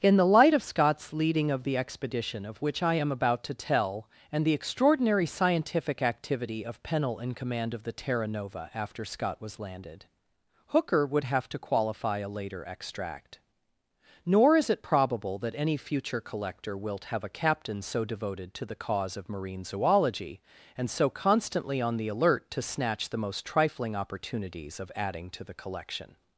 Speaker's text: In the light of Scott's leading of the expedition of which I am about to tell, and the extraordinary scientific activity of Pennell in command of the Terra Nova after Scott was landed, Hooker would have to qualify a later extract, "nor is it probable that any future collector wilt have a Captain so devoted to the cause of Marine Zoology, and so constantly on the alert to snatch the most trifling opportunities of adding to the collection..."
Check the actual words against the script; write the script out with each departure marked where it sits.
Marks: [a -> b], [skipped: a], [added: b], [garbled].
In the light of Scott's leading of the expedition of which I am about to tell, and the extraordinary scientific activity of Pennell in command of the Terra Nova after Scott was landed, Hooker would have to qualify a later extract, "nor is it probable that any future collector wilt have a Captain so devoted to the cause of Marine Zoology, and so constantly on the alert to snatch the most trifling opportunities of adding to the collection..."